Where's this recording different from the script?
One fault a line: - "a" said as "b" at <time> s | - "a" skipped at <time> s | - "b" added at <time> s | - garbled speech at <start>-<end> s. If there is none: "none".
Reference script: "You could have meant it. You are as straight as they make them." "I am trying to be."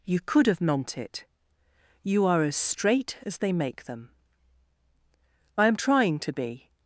none